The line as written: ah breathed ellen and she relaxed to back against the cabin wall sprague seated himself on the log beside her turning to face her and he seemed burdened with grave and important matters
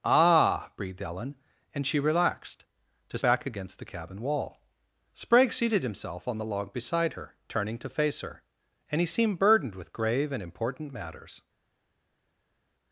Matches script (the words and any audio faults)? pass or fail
pass